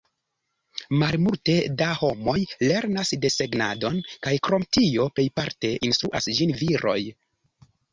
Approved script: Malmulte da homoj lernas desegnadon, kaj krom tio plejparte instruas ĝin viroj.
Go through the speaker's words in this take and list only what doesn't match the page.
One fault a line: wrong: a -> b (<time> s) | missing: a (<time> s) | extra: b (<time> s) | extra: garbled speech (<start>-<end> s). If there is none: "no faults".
no faults